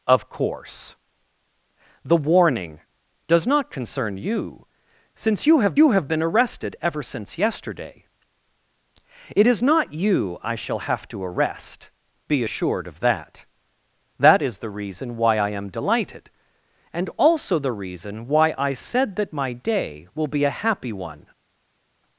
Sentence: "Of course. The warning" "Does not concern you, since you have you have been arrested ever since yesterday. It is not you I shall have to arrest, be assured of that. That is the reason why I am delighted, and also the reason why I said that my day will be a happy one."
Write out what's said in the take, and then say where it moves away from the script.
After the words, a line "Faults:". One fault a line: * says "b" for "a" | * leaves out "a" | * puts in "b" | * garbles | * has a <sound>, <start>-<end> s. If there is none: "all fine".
"Of course. The warning" "Does not concern you, since you have you have been arrested ever since yesterday. It is not you I shall have to arrest, be assured of that. That is the reason why I am delighted, and also the reason why I said that my day will be a happy one."
Faults:
all fine